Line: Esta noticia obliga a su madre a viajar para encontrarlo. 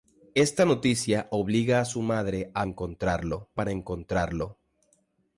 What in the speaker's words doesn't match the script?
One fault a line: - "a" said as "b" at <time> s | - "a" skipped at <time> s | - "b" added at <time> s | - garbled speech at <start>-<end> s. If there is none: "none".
- "viajar" said as "encontrarlo" at 2.6 s